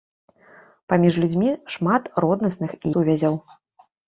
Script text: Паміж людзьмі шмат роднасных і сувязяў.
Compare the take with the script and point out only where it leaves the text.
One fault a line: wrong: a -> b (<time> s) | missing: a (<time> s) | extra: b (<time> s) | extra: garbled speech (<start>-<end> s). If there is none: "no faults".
no faults